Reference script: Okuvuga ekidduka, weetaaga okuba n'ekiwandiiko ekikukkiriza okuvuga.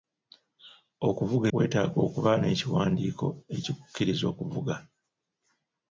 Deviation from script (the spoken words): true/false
true